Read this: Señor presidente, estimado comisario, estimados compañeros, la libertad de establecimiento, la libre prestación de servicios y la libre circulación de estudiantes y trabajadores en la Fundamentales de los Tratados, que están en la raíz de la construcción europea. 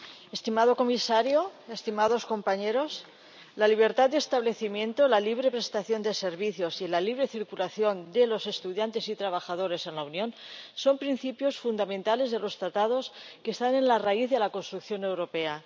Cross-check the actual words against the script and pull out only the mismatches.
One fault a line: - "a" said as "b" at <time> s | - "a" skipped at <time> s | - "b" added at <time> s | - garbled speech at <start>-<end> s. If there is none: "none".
- "los" added at 8.3 s
- "Unión son principios" added at 10.1 s